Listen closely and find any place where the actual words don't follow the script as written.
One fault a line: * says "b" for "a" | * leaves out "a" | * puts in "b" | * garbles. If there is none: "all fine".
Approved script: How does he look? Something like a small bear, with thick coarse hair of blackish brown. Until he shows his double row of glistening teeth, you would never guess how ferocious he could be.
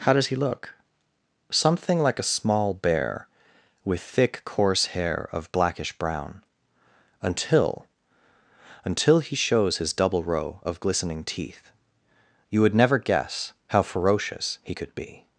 * puts in "Until"